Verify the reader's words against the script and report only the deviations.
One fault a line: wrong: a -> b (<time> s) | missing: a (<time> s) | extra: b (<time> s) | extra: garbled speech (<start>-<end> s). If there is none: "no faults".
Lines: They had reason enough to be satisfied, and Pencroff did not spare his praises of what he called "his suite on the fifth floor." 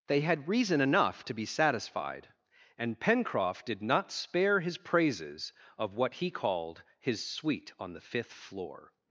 no faults